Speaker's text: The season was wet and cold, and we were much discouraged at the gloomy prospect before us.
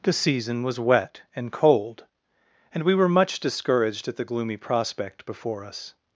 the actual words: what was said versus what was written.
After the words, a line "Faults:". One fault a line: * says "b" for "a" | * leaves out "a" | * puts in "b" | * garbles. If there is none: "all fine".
The season was wet and cold, and we were much discouraged at the gloomy prospect before us.
Faults:
all fine